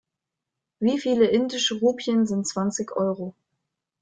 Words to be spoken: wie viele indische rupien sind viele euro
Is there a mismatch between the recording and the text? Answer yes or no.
yes